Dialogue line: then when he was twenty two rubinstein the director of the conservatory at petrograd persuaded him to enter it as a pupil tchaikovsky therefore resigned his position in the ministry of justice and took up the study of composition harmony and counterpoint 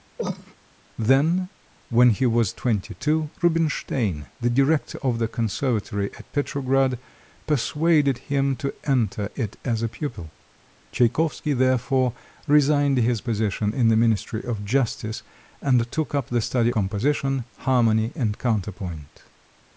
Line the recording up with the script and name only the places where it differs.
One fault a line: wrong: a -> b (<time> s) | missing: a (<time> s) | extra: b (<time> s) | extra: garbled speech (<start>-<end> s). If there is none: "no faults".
missing: of (16.7 s)